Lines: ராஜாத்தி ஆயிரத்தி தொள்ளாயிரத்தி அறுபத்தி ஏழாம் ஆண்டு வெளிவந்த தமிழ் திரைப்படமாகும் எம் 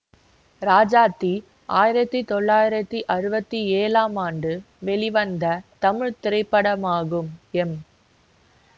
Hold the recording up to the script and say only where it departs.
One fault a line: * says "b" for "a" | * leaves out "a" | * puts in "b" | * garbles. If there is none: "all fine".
all fine